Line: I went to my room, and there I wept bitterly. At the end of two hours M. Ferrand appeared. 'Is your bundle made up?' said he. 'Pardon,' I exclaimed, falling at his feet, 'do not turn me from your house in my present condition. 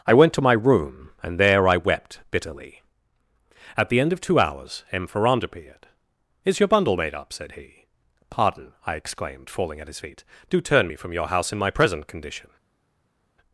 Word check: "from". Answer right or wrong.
right